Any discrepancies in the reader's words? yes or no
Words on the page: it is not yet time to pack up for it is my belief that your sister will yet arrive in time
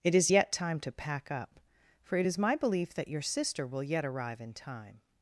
yes